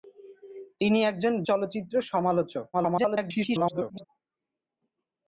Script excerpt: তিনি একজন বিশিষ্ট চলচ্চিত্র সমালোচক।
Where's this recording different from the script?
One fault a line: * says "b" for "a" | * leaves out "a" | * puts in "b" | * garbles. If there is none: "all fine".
* leaves out "বিশিষ্ট"
* garbles